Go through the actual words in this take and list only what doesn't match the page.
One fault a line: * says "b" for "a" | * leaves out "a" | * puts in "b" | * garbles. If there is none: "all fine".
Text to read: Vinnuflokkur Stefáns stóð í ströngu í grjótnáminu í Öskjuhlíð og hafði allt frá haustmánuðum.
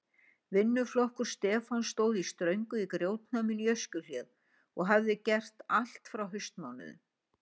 * puts in "gert"